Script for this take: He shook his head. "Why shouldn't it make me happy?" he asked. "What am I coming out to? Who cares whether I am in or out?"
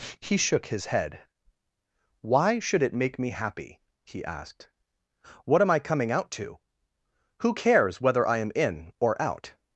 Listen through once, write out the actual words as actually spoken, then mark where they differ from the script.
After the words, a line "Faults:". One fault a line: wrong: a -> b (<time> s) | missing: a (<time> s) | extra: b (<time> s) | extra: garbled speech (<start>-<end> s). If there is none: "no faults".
He shook his head. "Why should it make me happy?" he asked. "What am I coming out to? Who cares whether I am in or out?"
Faults:
wrong: shouldn't -> should (2.6 s)